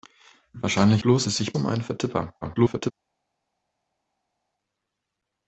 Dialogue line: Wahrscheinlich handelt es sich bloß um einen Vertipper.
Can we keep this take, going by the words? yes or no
no